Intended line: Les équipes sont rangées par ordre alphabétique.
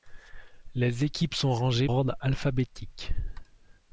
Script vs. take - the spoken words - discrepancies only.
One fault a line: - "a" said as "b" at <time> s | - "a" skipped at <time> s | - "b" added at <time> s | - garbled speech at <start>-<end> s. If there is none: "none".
- "par" skipped at 1.9 s